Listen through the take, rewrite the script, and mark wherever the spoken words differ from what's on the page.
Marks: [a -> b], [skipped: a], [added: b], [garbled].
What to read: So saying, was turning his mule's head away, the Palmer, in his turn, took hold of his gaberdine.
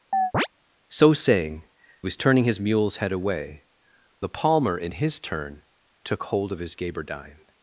So saying, was turning his mule's head away, the Palmer, in his turn, took hold of his gaberdine.